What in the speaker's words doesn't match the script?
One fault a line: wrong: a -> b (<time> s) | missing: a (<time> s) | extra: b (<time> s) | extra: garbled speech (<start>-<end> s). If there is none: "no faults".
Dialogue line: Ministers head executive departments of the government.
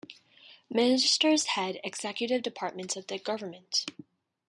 no faults